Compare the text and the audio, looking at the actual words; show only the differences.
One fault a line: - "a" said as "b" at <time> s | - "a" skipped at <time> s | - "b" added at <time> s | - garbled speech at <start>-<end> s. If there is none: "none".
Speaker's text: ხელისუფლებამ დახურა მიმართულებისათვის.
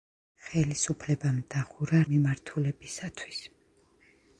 none